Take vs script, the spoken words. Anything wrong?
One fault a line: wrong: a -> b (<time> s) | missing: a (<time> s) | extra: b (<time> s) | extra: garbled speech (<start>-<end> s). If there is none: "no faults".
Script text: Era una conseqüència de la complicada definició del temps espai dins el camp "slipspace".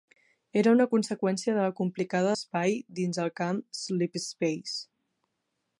missing: definició del temps (2.3 s)